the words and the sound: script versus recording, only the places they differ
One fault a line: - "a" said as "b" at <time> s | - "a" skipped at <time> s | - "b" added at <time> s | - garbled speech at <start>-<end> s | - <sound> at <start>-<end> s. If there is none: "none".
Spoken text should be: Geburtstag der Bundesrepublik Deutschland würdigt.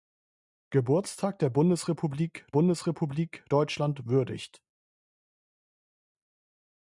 - "Bundesrepublik" added at 2.5 s